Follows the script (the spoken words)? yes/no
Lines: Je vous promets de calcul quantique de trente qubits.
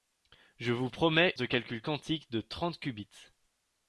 yes